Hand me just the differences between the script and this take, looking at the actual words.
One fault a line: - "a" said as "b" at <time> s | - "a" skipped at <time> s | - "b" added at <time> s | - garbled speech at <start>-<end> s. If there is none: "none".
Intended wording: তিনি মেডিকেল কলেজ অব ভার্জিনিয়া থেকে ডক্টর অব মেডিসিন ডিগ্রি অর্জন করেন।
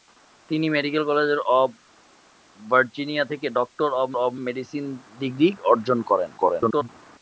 - "অব" added at 4.2 s
- garbled speech at 6.4-6.9 s